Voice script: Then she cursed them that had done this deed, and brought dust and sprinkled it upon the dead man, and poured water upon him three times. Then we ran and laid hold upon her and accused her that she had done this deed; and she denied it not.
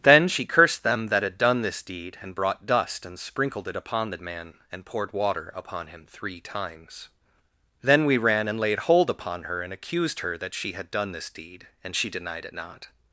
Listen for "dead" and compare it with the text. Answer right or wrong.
wrong